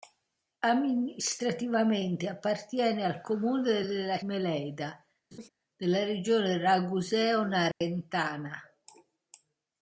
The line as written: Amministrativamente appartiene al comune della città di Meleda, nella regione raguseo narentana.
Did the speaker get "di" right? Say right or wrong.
wrong